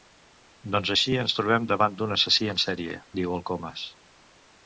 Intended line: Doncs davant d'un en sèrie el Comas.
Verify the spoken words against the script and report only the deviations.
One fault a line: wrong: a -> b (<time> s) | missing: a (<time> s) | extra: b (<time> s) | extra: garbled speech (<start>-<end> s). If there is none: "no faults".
extra: així ens trobem (0.9 s)
extra: assassí (2.2 s)
extra: diu (3.2 s)